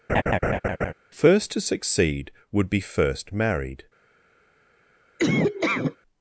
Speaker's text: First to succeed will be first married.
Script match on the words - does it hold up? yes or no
no